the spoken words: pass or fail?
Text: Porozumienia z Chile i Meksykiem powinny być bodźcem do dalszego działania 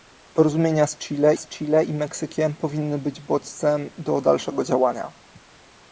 fail